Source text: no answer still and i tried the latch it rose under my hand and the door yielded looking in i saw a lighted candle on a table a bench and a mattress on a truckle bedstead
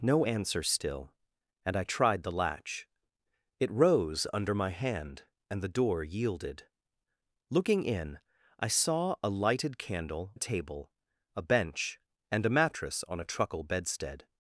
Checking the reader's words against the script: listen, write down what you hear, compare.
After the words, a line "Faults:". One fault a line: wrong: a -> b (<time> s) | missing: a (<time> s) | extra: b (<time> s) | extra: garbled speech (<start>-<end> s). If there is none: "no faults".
no answer still and i tried the latch it rose under my hand and the door yielded looking in i saw a lighted candle a table a bench and a mattress on a truckle bedstead
Faults:
missing: on (10.3 s)